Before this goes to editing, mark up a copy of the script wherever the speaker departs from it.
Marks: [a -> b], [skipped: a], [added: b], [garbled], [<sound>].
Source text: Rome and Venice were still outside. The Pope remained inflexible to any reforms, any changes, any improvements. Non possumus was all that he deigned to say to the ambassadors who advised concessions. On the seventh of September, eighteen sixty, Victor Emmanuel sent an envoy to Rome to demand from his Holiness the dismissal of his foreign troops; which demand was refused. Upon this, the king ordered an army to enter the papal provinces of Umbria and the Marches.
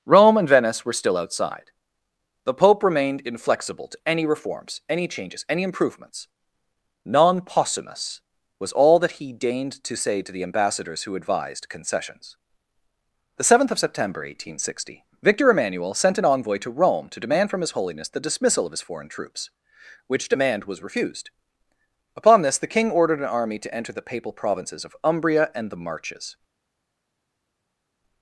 Rome and Venice were still outside. The Pope remained inflexible to any reforms, any changes, any improvements. Non possumus was all that he deigned to say to the ambassadors who advised concessions. [skipped: On] the seventh of September, eighteen sixty, Victor Emmanuel sent an envoy to Rome to demand from his Holiness the dismissal of his foreign troops; which demand was refused. Upon this, the king ordered an army to enter the papal provinces of Umbria and the Marches.